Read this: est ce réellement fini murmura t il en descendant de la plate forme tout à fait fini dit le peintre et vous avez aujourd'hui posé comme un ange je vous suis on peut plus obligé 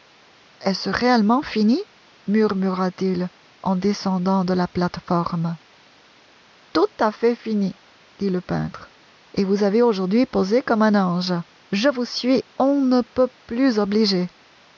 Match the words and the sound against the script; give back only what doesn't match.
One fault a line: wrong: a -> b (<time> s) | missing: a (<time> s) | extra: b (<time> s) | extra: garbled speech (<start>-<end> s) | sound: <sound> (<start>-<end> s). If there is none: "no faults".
extra: ne (12.8 s)